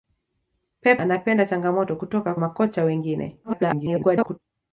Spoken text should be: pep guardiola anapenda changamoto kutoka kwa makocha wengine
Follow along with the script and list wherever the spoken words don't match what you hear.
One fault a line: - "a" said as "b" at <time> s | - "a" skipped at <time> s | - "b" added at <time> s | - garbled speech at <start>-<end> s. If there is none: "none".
- "guardiola" skipped at 1.0 s
- "kwa" skipped at 2.3 s
- garbled speech at 3.4-4.4 s